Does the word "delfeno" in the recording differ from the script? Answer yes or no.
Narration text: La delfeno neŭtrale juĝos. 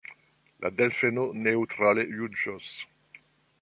no